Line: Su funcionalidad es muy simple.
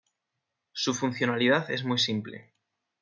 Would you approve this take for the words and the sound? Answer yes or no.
yes